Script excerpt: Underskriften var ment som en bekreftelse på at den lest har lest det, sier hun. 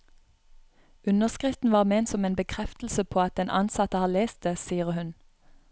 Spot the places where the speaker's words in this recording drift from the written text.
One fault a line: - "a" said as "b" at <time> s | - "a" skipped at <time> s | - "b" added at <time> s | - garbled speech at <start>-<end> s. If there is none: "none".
- "lest" said as "ansatte" at 3.5 s